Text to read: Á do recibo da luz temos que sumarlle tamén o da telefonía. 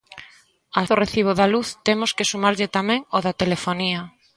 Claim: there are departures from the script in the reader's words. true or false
false